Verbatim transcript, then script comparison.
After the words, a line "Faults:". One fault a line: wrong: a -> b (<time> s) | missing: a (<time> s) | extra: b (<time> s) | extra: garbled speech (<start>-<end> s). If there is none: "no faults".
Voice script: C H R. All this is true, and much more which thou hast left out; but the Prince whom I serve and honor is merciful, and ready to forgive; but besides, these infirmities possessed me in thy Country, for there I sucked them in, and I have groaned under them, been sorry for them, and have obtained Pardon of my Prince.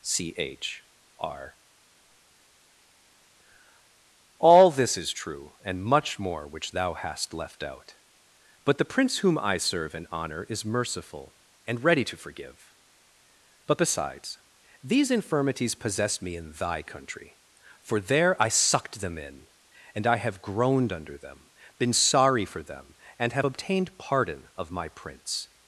C H R. All this is true, and much more which thou hast left out; but the Prince whom I serve and honor is merciful, and ready to forgive; but besides, these infirmities possess me in thy Country, for there I sucked them in, and I have groaned under them, been sorry for them, and have obtained Pardon of my Prince.
Faults:
wrong: possessed -> possess (15.8 s)